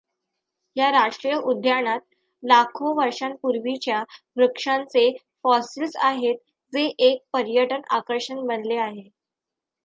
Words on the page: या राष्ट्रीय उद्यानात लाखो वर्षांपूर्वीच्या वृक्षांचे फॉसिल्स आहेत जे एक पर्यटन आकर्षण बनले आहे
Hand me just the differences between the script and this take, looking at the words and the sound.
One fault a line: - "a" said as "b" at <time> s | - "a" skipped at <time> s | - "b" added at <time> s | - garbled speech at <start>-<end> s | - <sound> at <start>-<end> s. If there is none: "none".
none